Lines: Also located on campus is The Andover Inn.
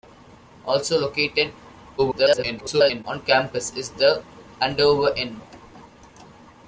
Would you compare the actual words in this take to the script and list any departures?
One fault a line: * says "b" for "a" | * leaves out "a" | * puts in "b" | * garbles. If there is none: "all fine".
* garbles